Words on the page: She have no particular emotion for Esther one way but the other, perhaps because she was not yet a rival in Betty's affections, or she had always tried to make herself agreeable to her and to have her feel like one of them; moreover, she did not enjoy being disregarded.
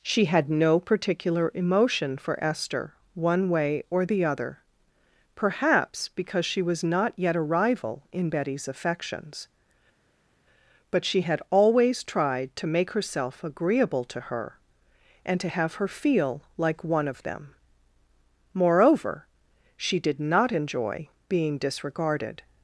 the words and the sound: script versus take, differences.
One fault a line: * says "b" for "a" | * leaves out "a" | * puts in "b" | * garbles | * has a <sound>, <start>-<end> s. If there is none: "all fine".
* says "had" for "have"
* says "or" for "but"
* says "but" for "or"